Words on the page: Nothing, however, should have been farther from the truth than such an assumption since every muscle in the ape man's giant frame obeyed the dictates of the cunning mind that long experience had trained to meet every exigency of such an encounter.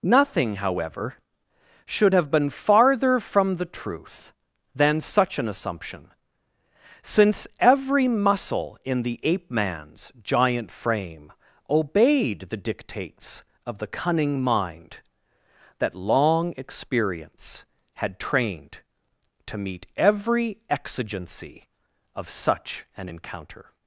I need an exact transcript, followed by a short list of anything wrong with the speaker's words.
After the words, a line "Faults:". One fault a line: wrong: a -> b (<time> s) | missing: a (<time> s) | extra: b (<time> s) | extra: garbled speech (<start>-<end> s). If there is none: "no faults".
Nothing, however, should have been farther from the truth than such an assumption since every muscle in the ape man's giant frame obeyed the dictates of the cunning mind that long experience had trained to meet every exigency of such an encounter.
Faults:
no faults